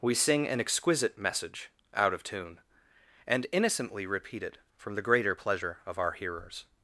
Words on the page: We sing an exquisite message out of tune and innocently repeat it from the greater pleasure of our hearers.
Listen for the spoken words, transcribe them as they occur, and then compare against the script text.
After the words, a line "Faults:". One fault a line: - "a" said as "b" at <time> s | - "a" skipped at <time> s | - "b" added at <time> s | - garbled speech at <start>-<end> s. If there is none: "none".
We sing an exquisite message out of tune and innocently repeat it from the greater pleasure of our hearers.
Faults:
none